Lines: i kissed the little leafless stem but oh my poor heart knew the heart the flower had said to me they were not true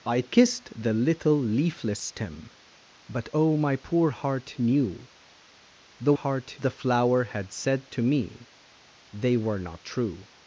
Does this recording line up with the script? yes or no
yes